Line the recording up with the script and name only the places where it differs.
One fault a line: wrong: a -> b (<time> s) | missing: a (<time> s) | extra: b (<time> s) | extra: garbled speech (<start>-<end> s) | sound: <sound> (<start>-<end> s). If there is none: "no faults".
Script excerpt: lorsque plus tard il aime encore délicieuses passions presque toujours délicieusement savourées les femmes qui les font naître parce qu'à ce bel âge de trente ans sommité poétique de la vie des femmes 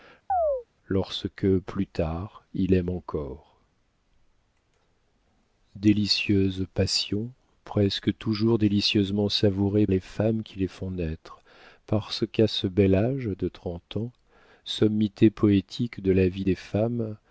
sound: chirp (0.3-0.6 s)